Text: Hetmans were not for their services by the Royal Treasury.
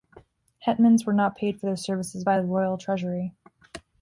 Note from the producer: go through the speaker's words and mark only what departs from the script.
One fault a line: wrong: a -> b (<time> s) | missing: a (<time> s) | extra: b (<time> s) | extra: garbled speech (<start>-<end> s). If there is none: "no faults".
extra: paid (1.4 s)